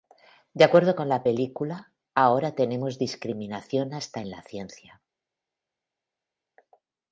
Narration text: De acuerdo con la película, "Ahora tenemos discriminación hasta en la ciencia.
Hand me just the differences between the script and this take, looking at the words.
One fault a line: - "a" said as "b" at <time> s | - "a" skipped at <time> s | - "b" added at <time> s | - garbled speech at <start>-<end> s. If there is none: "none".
none